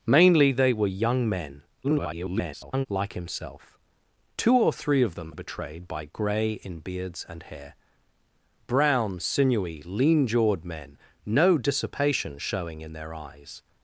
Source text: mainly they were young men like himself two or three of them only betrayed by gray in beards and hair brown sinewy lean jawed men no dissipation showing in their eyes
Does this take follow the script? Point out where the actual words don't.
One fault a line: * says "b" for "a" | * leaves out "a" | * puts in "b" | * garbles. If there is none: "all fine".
* garbles
* leaves out "only"